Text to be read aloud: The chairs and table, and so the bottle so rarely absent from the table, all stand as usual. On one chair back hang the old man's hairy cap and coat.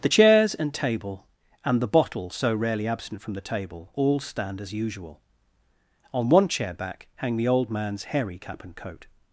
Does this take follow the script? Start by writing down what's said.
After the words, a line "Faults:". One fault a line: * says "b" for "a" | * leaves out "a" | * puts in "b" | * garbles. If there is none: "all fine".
The chairs and table, and the bottle so rarely absent from the table, all stand as usual. On one chair back hang the old man's hairy cap and coat.
Faults:
* leaves out "so"